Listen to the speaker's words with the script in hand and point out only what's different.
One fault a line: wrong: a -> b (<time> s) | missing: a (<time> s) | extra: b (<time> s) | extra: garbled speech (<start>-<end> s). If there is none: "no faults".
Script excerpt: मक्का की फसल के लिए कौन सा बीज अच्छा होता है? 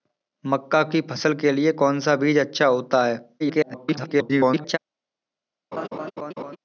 extra: garbled speech (3.4-4.8 s)